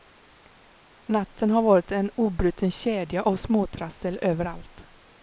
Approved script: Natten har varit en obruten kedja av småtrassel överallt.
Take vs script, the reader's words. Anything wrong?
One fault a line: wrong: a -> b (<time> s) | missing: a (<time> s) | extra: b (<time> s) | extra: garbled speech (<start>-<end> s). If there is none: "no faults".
no faults